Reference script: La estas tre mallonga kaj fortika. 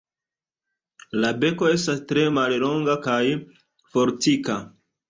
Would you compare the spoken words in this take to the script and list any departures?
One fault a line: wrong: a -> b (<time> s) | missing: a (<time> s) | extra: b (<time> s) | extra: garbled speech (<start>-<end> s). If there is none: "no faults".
extra: beko (1.4 s)